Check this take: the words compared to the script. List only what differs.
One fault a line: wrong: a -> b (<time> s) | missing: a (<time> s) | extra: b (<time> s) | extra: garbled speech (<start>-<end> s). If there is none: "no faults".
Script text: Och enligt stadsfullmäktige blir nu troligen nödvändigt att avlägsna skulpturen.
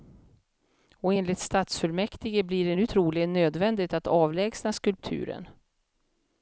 extra: det (2.7 s)